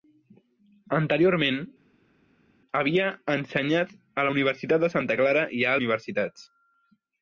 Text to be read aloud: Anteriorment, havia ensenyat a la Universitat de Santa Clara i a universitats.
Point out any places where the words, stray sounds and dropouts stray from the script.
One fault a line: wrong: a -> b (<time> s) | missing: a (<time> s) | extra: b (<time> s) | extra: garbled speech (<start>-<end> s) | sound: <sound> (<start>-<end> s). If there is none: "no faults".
no faults